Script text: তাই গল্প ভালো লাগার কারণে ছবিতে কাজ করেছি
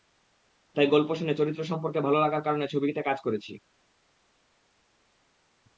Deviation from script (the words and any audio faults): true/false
true